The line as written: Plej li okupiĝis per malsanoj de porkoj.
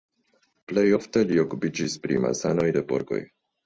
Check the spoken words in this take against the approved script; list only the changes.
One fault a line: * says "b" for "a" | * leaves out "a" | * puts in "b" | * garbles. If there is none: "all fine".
* puts in "ofte"
* says "pri" for "per"